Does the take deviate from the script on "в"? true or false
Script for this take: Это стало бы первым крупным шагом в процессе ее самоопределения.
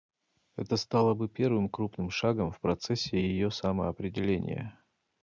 false